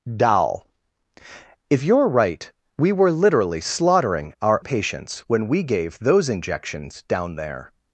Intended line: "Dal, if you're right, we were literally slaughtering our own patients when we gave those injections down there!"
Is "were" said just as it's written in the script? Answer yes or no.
yes